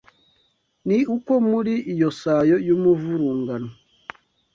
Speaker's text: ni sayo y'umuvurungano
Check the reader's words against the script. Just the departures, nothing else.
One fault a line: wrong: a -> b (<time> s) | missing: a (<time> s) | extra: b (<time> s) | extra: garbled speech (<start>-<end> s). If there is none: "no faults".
extra: uko muri iyo (1.1 s)